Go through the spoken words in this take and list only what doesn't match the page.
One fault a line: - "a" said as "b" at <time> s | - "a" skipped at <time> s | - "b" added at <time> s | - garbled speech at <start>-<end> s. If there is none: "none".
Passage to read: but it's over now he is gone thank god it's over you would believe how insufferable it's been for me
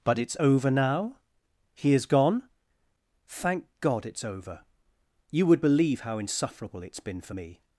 none